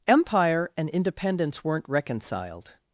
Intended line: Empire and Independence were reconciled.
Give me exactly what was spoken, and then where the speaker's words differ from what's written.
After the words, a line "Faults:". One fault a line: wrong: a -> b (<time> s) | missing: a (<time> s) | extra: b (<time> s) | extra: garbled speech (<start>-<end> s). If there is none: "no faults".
Empire and Independence weren't reconciled.
Faults:
wrong: were -> weren't (1.6 s)